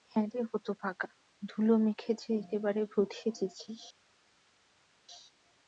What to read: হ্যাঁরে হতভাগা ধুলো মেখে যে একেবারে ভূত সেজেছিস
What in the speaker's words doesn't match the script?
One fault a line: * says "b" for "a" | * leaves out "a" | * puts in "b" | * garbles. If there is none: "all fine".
all fine